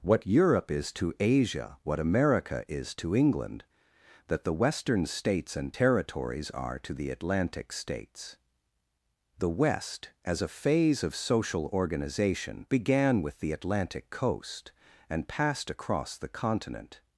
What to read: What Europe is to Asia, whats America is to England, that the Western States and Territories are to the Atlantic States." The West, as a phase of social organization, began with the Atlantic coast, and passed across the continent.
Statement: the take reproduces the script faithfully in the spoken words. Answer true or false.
false